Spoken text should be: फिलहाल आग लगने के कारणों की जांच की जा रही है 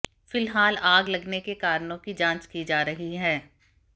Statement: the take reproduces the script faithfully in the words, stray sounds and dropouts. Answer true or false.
true